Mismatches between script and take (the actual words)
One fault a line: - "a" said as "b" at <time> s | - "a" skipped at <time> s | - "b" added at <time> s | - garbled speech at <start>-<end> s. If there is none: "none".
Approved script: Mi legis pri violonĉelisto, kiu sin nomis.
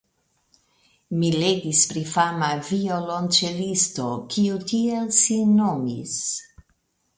- "fama" added at 2.1 s
- "tiel" added at 4.7 s